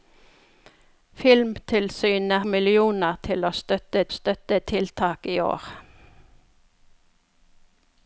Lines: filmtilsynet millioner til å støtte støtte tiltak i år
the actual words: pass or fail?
pass